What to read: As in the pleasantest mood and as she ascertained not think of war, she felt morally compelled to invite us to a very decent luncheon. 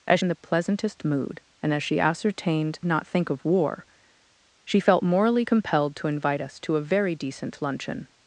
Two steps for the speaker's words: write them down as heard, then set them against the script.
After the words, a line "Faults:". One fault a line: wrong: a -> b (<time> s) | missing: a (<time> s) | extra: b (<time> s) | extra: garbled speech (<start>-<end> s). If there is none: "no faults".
As in the pleasantest mood and as she ascertained not think of war, she felt morally compelled to invite us to a very decent luncheon.
Faults:
no faults